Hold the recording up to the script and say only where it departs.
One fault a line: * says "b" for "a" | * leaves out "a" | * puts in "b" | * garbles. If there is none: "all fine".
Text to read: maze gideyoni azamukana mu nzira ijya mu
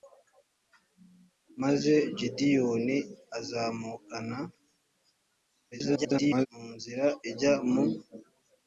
* garbles